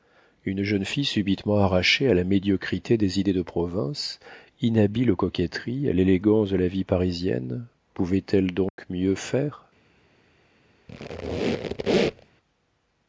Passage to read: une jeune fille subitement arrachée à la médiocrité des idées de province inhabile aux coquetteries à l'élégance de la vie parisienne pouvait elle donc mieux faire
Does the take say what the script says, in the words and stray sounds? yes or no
no